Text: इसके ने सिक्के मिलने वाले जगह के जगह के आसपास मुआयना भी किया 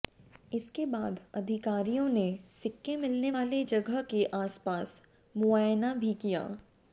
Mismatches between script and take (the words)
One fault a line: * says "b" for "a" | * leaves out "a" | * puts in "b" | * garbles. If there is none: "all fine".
* puts in "बाद अधिकारियों"
* leaves out "जगह के"